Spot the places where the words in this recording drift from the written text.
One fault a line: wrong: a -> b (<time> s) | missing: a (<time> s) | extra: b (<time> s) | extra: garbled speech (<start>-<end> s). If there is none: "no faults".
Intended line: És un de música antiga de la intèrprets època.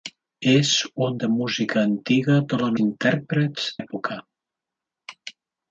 no faults